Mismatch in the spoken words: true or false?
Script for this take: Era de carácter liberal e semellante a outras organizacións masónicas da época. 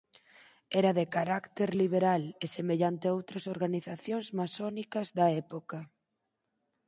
false